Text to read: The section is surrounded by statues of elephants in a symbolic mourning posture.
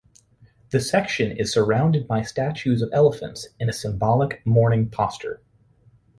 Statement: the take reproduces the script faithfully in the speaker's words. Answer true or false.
true